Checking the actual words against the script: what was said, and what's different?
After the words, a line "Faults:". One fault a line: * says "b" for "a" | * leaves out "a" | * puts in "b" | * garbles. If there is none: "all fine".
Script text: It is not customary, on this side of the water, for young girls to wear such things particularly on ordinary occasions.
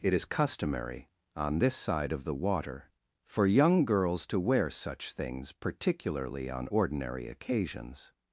It is customary, on this side of the water, for young girls to wear such things particularly on ordinary occasions.
Faults:
* leaves out "not"